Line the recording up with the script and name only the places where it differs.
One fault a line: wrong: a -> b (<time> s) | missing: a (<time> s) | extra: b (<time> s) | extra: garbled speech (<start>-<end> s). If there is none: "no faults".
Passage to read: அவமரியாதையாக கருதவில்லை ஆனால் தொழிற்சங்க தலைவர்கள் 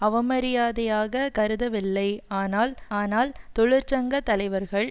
extra: ஆனால் (3.0 s)